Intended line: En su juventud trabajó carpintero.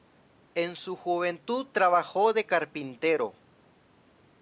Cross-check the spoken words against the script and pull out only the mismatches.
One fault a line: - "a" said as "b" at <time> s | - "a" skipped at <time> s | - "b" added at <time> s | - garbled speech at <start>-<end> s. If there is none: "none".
- "de" added at 2.3 s